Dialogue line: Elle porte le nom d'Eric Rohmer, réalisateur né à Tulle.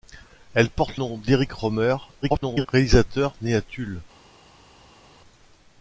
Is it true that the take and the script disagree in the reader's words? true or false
true